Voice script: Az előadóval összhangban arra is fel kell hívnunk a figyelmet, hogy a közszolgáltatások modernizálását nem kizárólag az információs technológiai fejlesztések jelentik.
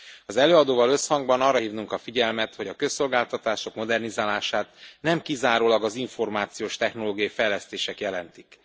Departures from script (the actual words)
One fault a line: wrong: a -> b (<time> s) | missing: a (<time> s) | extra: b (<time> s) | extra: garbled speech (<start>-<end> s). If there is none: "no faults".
missing: is fel kell (1.6 s)